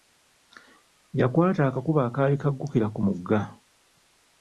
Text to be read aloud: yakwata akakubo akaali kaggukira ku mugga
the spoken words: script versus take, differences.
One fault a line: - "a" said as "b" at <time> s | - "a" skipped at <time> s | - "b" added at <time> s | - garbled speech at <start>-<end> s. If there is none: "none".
none